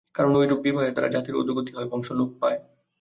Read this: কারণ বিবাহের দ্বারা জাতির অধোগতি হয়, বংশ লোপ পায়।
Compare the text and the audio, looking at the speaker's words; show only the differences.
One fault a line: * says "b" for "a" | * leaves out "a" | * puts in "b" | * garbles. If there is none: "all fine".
* puts in "ঐরূপ"